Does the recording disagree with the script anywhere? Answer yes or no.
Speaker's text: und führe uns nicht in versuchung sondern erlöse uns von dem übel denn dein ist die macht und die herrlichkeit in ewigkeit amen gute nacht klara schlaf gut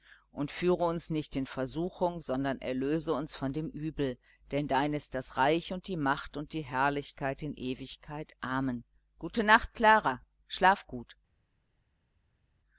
yes